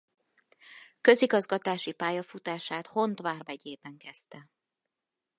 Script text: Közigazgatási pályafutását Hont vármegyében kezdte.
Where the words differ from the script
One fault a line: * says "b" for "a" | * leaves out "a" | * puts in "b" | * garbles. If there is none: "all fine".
all fine